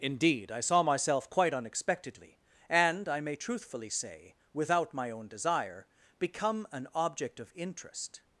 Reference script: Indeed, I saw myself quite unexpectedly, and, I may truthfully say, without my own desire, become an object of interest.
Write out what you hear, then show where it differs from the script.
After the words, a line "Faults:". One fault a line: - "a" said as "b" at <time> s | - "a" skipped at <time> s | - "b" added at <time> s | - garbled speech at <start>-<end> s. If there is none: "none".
Indeed, I saw myself quite unexpectedly, and, I may truthfully say, without my own desire, become an object of interest.
Faults:
none